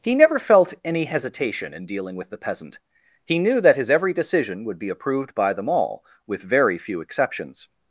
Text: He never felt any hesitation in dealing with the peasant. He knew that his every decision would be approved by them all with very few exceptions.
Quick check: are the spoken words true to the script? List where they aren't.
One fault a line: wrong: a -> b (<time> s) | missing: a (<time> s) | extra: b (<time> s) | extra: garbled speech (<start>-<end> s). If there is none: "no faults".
no faults